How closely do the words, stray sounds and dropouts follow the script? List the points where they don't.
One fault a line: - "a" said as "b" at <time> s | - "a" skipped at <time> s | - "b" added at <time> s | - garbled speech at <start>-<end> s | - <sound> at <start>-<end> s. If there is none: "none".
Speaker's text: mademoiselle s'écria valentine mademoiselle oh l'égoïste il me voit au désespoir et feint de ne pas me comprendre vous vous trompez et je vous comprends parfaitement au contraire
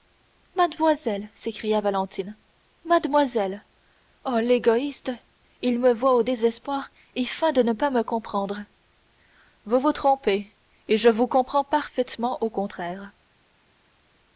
none